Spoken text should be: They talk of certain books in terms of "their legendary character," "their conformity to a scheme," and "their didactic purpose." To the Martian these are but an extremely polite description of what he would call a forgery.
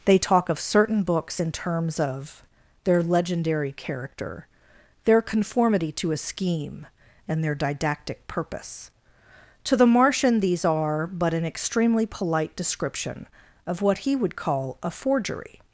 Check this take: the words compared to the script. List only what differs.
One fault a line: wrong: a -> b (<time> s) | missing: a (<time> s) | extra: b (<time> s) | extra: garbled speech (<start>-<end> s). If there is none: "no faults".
no faults